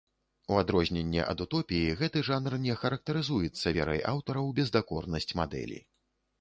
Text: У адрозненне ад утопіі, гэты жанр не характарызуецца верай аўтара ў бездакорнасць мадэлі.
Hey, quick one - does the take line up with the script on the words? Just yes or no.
yes